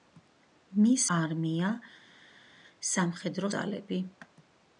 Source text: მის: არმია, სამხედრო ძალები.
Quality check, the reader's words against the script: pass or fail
pass